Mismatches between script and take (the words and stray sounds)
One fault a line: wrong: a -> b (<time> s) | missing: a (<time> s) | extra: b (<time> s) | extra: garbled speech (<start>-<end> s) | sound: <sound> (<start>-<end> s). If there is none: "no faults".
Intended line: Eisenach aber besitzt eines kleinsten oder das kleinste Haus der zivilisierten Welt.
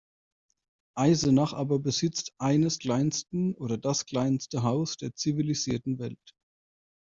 no faults